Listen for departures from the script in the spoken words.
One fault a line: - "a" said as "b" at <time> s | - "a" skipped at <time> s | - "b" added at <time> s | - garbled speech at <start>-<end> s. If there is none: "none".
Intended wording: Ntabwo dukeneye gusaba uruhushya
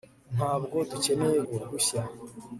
- "gusaba" skipped at 1.4 s